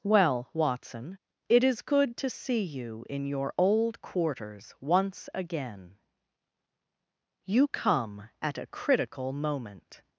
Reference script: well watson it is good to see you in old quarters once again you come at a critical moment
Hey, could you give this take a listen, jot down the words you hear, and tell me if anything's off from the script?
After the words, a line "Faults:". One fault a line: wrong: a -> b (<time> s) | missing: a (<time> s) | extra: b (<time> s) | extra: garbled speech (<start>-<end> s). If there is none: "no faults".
well watson it is good to see you in your old quarters once again you come at a critical moment
Faults:
extra: your (3.3 s)